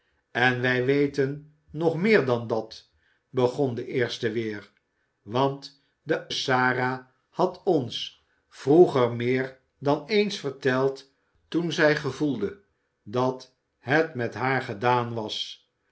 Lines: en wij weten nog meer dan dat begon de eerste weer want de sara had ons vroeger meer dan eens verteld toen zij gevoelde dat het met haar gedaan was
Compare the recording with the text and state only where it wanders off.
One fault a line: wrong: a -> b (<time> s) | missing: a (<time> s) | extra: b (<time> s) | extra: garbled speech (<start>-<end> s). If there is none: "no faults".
no faults